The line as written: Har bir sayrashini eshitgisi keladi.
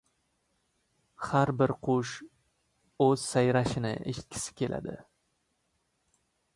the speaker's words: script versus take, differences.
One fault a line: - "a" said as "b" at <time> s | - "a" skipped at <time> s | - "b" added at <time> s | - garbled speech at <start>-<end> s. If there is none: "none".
- "qush o‘z" added at 1.9 s